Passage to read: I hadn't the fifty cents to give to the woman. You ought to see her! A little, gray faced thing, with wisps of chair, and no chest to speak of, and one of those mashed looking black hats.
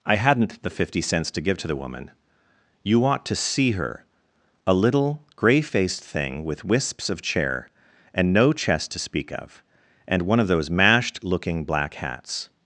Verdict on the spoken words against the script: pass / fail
pass